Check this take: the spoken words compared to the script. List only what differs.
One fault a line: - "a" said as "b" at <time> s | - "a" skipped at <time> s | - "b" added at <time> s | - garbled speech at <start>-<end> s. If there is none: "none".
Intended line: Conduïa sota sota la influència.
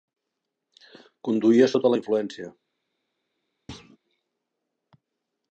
- "sota" skipped at 1.9 s